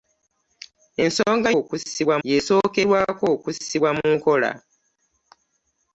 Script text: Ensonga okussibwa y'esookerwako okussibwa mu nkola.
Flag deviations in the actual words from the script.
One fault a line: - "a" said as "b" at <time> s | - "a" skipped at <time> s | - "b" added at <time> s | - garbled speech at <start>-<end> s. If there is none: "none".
none